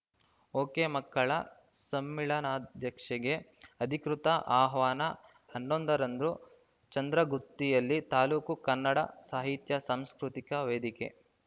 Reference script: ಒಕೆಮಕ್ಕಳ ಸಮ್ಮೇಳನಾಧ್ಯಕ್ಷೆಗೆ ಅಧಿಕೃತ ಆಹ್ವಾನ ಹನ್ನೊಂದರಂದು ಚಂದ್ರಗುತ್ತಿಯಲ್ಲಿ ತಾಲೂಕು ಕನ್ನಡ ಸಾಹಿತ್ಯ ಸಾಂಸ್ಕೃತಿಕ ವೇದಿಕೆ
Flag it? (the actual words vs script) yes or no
no